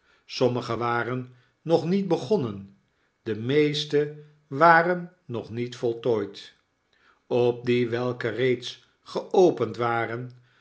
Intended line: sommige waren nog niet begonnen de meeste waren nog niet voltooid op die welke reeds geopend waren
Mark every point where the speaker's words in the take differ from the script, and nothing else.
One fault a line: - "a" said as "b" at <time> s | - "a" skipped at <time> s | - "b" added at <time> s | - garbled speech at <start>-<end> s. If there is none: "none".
none